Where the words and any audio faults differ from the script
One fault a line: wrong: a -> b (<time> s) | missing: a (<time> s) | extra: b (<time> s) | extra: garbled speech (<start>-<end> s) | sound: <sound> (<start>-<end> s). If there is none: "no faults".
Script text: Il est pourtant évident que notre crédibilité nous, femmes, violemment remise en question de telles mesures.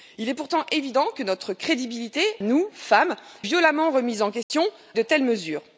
sound: dropout (4.4-4.5 s)